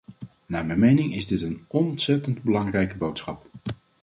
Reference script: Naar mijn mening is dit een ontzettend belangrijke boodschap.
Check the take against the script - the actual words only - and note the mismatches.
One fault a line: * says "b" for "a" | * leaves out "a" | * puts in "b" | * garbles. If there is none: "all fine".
all fine